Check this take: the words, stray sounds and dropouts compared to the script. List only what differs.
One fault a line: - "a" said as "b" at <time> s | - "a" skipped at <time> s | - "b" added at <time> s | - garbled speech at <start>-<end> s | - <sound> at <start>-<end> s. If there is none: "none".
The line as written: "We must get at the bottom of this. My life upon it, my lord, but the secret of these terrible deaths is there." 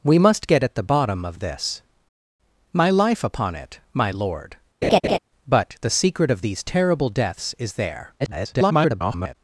- laugh at 4.8-5.2 s
- garbled speech at 8.2-9.4 s